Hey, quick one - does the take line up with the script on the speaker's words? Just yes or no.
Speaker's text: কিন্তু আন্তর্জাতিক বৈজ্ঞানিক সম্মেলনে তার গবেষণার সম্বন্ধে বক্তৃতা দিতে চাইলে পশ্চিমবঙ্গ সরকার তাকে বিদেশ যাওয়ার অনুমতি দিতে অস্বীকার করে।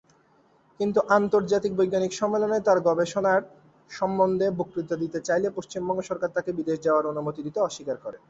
yes